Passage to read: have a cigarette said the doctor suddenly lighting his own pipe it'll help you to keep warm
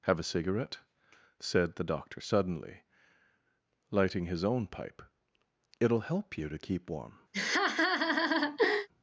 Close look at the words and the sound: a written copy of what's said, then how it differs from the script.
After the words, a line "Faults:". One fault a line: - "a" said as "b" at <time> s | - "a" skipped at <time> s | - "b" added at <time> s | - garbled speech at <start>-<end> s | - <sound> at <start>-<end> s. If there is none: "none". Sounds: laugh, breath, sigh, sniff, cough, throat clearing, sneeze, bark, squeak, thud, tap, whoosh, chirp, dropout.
have a cigarette said the doctor suddenly lighting his own pipe it'll help you to keep warm
Faults:
- laugh at 7.3-8.9 s